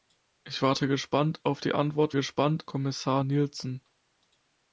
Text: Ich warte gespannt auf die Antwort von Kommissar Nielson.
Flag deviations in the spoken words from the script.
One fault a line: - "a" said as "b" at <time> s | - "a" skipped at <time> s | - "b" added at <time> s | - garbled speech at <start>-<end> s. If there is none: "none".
- "von" said as "gespannt" at 2.1 s